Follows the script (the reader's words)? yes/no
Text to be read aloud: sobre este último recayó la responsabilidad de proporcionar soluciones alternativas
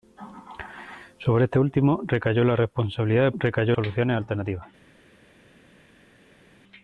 no